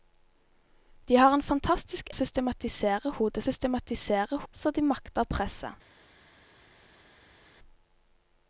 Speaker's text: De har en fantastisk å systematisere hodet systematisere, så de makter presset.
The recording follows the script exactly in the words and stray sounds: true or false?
true